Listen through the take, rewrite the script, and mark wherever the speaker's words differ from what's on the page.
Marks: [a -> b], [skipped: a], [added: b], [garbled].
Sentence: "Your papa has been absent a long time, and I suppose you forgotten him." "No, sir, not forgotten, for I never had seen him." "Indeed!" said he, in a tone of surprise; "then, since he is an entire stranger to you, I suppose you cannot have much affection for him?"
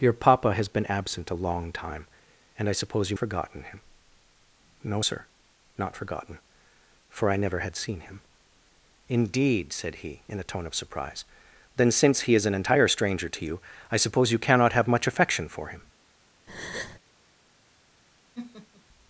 "Your papa has been absent a long time, and I suppose you forgotten him." "No, sir, not forgotten, for I never had seen him." "Indeed!" said he, in a tone of surprise; "then, since he is an entire stranger to you, I suppose you cannot have much affection for him?"